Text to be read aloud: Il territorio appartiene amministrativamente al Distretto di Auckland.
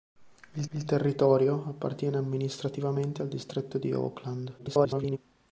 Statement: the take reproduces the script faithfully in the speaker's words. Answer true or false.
false